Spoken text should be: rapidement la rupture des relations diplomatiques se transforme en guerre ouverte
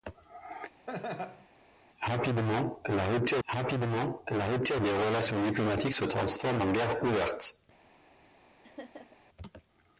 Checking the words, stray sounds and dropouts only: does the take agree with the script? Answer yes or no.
no